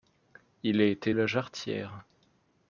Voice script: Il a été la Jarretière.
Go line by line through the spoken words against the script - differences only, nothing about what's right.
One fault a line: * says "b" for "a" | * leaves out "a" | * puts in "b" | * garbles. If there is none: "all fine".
all fine